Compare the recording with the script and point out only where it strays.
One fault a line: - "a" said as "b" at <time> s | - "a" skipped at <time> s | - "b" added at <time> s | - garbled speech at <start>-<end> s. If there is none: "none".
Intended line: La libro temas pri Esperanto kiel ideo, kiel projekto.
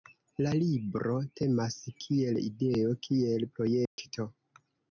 - "pri Esperanto" skipped at 1.8 s